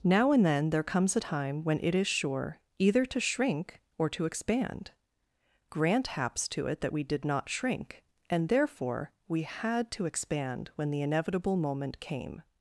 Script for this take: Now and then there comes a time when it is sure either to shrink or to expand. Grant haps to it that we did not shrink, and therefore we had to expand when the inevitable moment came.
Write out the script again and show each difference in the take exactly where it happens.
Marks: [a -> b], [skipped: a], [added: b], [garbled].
Now and then there comes a time when it is sure either to shrink or to expand. Grant haps to it that we did not shrink, and therefore we had to expand when the inevitable moment came.